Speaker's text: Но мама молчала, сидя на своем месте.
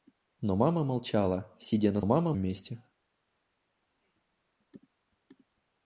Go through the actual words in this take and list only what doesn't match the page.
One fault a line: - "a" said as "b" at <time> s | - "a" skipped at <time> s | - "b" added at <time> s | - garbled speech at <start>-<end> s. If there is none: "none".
- "своем" said as "мама" at 2.0 s